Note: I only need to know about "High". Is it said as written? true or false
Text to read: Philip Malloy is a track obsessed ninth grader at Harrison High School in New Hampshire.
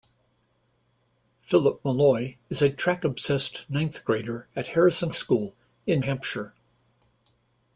false